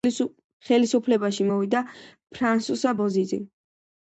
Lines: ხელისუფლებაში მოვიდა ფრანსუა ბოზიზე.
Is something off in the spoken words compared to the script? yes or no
no